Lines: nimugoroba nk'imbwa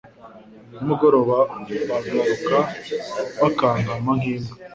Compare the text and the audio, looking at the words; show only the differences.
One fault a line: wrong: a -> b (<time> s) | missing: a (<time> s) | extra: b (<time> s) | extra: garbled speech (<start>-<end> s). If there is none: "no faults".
extra: bagaruka bakankama (1.9 s)